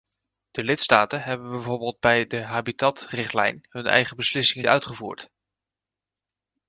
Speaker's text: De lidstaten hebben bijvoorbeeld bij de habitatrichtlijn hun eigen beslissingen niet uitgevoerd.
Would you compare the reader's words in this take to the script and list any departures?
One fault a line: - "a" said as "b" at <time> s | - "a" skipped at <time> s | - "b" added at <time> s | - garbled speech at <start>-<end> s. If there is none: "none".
- "niet" skipped at 4.7 s